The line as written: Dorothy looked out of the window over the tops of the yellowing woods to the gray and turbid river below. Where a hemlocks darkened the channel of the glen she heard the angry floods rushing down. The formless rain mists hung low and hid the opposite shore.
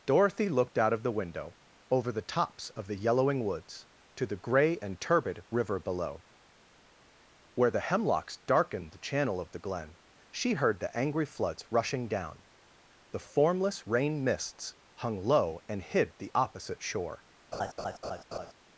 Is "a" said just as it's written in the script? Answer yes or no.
no